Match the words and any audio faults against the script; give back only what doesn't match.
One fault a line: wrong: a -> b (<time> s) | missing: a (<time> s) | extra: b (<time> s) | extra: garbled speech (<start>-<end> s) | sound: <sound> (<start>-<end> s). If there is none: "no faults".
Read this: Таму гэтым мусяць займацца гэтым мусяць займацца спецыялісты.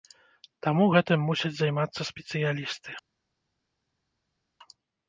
missing: гэтым мусяць займацца (2.1 s)